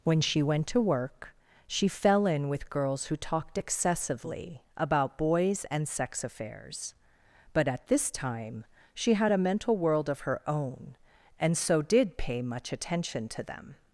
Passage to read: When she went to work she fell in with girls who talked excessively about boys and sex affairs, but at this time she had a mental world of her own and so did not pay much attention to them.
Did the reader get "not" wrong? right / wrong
wrong